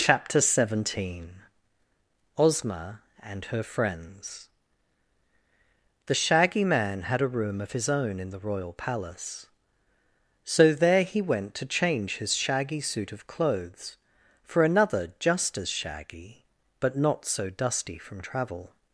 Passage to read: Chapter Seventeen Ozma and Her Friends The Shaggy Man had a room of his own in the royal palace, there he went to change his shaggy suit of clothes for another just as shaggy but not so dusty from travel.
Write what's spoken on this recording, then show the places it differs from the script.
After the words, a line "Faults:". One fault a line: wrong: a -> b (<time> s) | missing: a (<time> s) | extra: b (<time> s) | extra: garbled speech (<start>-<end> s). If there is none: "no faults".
Chapter Seventeen Ozma and Her Friends The Shaggy Man had a room of his own in the royal palace, so there he went to change his shaggy suit of clothes for another just as shaggy but not so dusty from travel.
Faults:
extra: so (10.4 s)